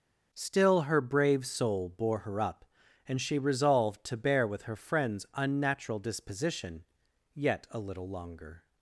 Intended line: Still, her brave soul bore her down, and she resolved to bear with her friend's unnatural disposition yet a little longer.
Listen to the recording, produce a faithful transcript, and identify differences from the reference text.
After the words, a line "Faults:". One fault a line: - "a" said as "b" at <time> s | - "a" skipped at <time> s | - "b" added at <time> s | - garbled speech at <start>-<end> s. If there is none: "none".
Still, her brave soul bore her up, and she resolved to bear with her friend's unnatural disposition yet a little longer.
Faults:
- "down" said as "up" at 2.4 s